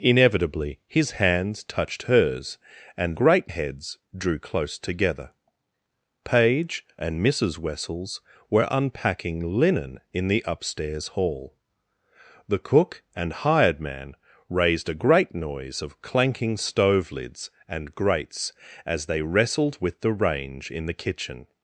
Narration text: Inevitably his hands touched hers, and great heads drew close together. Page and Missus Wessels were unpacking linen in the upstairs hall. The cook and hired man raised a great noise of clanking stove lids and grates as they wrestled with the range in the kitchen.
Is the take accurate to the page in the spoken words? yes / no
yes